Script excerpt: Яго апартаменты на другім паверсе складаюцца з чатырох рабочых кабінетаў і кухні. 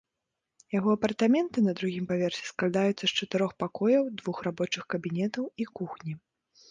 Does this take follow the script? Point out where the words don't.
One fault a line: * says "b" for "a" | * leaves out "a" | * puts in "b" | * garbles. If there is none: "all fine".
* puts in "пакояў двух"